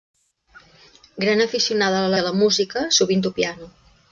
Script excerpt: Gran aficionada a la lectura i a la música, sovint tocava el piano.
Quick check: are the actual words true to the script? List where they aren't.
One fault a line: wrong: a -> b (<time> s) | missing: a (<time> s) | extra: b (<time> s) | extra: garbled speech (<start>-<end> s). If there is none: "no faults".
missing: lectura (2.1 s)
missing: tocava (3.3 s)